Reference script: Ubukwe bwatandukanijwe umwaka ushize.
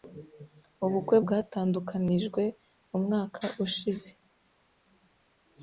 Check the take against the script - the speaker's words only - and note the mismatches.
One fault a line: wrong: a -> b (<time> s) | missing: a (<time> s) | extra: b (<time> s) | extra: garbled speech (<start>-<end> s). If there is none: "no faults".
no faults